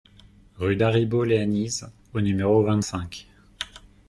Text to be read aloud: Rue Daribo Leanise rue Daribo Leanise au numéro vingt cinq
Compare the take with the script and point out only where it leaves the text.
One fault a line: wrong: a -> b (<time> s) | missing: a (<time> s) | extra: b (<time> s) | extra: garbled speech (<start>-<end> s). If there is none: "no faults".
missing: rue Daribo Leanise (1.9 s)